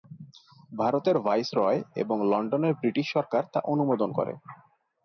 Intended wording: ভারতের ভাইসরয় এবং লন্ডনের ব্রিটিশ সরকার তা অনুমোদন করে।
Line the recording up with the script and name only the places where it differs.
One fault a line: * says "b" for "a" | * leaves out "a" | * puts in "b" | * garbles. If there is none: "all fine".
all fine